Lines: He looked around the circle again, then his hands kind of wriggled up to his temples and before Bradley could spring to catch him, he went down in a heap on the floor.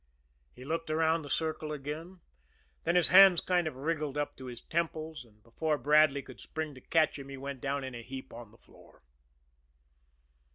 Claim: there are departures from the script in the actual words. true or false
false